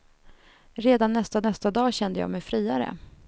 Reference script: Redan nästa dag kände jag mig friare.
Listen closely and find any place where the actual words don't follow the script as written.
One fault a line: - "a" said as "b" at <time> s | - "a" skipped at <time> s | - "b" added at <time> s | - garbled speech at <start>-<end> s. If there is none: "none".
- "nästa" added at 1.4 s